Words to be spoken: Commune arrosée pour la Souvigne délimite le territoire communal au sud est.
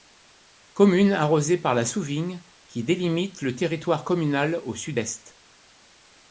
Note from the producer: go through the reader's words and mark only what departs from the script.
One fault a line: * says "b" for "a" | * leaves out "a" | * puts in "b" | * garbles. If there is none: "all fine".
* says "par" for "pour"
* puts in "qui"